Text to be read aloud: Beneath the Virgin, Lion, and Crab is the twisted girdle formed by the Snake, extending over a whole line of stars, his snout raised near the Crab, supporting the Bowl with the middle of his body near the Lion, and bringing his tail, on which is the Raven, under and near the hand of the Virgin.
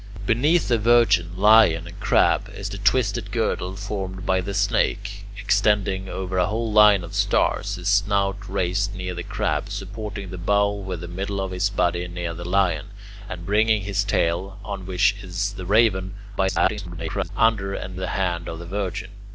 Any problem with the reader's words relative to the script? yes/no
yes